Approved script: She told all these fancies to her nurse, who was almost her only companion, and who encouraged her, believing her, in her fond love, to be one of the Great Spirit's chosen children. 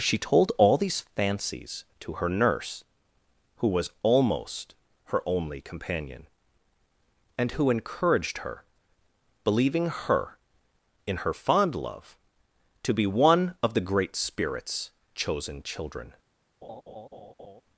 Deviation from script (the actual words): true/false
false